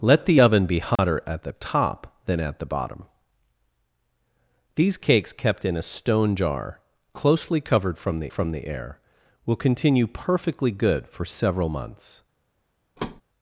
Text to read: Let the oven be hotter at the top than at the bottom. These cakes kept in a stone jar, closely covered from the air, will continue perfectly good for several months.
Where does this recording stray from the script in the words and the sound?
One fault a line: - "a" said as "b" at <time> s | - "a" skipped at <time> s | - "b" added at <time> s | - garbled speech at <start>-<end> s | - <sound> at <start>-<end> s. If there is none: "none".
- dropout at 1.0-1.0 s
- "from the" added at 8.3 s
- thud at 13.0-13.2 s